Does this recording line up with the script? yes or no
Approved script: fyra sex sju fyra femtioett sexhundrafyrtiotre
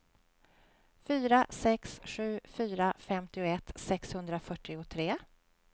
yes